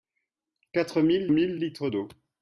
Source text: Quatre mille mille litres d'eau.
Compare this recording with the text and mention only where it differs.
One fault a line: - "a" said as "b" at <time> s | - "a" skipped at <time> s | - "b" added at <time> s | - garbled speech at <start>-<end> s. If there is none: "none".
none